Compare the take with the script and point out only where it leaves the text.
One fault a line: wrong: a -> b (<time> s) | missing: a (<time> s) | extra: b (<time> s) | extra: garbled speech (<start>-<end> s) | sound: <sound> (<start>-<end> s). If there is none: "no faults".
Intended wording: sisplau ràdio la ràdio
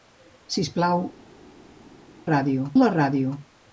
no faults